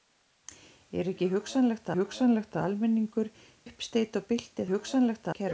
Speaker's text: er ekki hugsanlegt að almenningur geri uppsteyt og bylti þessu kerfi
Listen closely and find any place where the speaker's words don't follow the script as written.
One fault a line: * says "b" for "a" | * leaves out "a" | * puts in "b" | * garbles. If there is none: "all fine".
* puts in "hugsanlegt"
* leaves out "geri"
* says "hugsanlegt" for "þessu"